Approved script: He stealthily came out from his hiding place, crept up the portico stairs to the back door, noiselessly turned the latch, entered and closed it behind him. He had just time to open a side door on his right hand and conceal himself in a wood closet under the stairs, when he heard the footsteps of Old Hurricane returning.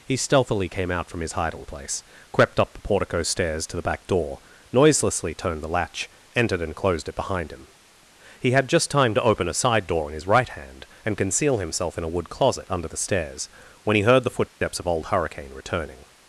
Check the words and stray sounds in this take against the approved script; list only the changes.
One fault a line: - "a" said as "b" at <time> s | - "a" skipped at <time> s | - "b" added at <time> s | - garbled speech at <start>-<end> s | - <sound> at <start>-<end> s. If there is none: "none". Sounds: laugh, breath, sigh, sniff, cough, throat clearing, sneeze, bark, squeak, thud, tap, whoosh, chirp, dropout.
- "on" said as "in" at 10.1 s
- dropout at 14.5-14.6 s